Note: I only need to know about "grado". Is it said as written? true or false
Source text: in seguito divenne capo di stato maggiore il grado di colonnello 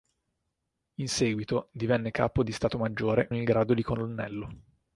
true